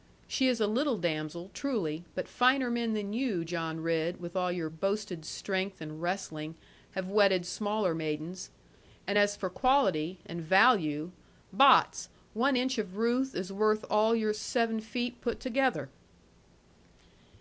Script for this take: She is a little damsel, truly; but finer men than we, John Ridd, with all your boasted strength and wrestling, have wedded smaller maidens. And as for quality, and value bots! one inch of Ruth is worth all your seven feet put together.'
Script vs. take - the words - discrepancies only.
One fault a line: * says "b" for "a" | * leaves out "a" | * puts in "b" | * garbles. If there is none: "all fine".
* says "you" for "we"